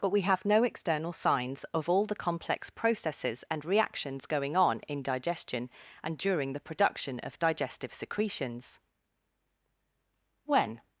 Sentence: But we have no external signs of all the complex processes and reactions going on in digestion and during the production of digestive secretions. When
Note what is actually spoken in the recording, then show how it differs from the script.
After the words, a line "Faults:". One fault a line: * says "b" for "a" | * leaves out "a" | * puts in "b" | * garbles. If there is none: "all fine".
But we have no external signs of all the complex processes and reactions going on in digestion and during the production of digestive secretions. When
Faults:
all fine